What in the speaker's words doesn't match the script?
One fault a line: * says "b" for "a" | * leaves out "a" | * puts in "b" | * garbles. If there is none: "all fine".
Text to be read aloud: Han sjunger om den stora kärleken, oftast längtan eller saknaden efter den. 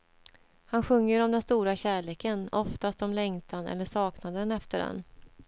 * puts in "om"